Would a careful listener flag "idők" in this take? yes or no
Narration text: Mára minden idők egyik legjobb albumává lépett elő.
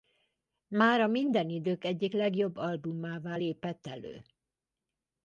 no